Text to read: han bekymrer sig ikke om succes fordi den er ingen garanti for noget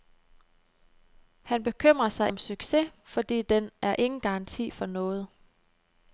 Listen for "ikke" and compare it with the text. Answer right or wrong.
wrong